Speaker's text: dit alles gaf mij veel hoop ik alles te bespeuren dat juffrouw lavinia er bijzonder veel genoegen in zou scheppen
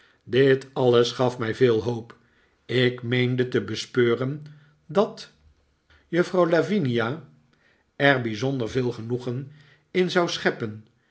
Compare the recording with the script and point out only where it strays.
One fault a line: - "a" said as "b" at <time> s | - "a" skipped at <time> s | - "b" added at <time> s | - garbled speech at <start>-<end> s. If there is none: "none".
- "alles" said as "meende" at 3.0 s